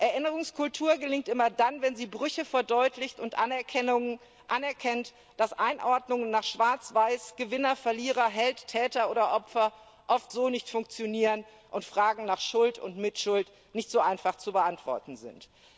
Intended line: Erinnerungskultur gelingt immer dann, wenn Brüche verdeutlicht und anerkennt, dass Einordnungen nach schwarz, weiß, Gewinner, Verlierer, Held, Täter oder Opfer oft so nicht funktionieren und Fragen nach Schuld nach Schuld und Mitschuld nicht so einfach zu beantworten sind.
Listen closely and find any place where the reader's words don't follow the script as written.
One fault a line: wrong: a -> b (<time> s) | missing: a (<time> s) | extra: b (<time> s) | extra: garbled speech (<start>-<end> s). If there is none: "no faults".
extra: sie (1.9 s)
missing: nach Schuld (12.8 s)